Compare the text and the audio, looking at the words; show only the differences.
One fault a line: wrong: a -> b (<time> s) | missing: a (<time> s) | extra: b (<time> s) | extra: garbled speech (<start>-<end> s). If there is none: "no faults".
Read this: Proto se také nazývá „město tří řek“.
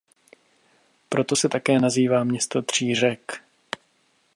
no faults